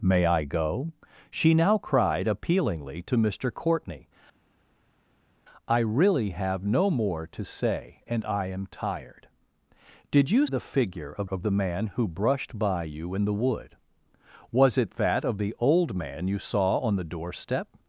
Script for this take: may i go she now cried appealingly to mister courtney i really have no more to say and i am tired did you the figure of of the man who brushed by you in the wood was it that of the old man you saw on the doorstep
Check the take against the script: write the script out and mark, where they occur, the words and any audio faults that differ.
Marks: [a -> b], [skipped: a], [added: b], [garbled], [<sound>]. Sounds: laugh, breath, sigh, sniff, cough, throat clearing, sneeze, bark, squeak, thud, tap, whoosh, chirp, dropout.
may i go she now cried appealingly to mister courtney i really have no more to say and i am tired did you the figure of of the man who brushed by you in the wood was it that of the old man you saw on the doorstep